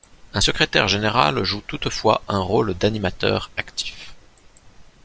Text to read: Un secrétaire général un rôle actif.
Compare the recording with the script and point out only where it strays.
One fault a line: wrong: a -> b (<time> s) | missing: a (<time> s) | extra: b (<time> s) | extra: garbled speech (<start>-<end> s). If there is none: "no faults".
extra: joue toutefois (1.4 s)
extra: d'animateur (2.7 s)